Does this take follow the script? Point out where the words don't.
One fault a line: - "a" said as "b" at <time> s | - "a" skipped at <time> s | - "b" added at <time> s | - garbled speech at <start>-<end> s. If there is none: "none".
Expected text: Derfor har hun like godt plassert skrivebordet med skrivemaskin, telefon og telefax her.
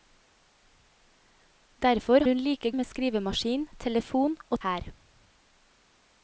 - "har" skipped at 2.2 s
- "godt plassert skrivebordet" skipped at 2.7 s
- "telefax" skipped at 4.6 s